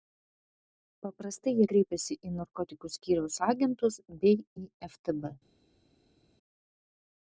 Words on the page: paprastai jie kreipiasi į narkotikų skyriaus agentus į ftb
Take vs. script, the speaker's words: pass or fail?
fail